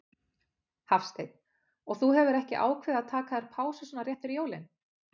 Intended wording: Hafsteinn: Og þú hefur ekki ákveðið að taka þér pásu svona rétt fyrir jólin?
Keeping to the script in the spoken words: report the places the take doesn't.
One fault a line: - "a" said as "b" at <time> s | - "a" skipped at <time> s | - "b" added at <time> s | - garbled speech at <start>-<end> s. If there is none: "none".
none